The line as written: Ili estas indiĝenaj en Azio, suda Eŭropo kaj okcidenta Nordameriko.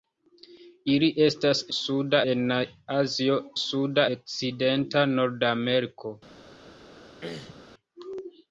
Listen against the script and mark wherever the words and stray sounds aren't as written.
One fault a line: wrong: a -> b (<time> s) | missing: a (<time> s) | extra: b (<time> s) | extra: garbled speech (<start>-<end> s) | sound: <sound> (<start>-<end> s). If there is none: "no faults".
wrong: indiĝenaj -> suda (1.8 s)
missing: Eŭropo kaj (4.1 s)
sound: throat clearing (7.2-7.6 s)